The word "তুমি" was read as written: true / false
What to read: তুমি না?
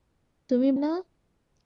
true